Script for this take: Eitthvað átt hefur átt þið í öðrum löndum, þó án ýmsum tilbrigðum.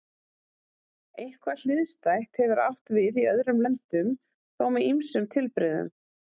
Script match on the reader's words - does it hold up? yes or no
no